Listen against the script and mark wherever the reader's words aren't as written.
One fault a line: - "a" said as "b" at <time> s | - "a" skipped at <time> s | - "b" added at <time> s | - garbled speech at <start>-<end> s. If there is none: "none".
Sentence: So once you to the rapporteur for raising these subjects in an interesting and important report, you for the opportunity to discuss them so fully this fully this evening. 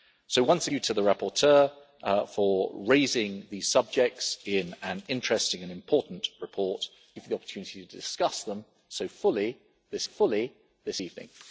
none